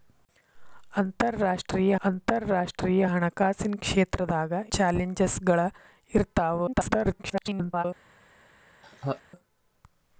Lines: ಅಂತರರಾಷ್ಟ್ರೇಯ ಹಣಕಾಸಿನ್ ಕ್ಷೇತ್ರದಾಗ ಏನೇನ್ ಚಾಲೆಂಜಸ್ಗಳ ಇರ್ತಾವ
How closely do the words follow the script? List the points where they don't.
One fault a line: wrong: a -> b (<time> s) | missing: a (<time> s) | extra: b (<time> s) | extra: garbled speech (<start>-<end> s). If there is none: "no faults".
extra: ಅಂತರರಾಷ್ಟ್ರೇಯ (2.0 s)
missing: ಏನೇನ್ (4.5 s)
extra: garbled speech (6.7-7.8 s)